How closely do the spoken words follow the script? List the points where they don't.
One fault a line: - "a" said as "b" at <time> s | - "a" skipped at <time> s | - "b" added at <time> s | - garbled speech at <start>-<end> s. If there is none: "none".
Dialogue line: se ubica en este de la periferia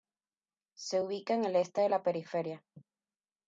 - "el" added at 1.4 s